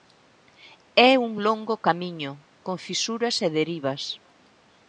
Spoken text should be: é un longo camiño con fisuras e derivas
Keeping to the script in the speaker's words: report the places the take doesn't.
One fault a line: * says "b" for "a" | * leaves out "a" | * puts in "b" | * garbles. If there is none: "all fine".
all fine